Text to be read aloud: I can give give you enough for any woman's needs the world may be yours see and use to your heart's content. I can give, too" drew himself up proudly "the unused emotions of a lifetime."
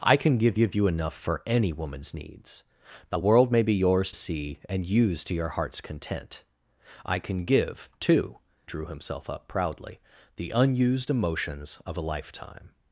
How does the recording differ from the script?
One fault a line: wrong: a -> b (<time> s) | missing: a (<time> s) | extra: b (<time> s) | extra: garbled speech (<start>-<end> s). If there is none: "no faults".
no faults